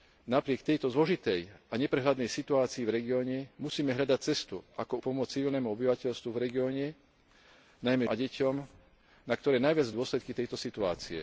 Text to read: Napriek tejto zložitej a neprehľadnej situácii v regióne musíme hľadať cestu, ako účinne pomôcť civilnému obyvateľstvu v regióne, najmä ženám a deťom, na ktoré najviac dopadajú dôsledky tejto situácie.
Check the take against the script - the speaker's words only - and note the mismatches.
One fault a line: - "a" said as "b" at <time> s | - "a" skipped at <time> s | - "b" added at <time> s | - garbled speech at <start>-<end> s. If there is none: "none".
- "účinne" skipped at 5.0 s
- "ženám" skipped at 8.0 s
- "dopadajú" skipped at 9.9 s